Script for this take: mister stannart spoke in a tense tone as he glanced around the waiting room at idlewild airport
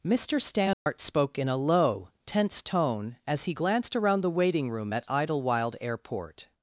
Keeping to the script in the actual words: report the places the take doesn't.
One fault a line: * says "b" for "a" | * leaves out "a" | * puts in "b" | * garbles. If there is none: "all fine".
* puts in "low"